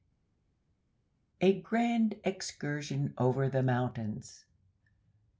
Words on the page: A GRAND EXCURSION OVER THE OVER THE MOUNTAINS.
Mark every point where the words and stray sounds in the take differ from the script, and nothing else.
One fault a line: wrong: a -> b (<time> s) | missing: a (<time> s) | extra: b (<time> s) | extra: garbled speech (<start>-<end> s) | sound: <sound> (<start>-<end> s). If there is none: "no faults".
missing: OVER THE (3.6 s)